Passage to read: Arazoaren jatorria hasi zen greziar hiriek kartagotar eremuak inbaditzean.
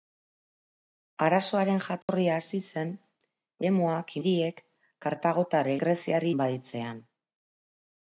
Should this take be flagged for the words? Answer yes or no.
yes